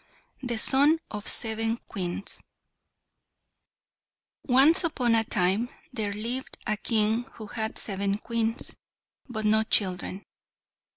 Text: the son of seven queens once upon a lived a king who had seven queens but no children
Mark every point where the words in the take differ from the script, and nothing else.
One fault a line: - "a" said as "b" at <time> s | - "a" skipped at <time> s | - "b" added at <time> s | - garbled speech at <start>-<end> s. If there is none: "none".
- "time there" added at 5.3 s